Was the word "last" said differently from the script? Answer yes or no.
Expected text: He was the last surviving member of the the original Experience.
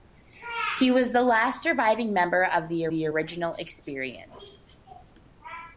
no